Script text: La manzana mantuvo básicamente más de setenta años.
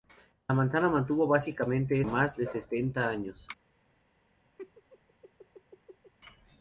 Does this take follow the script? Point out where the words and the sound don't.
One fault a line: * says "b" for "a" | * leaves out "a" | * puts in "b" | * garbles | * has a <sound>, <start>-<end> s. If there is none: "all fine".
* has a laugh, 4.6-6.1 s